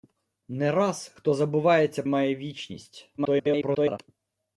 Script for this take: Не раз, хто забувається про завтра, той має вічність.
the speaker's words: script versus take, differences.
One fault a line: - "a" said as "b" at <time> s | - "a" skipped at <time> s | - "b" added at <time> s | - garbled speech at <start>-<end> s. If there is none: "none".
- "про завтра той" skipped at 2.0 s
- garbled speech at 3.2-4.0 s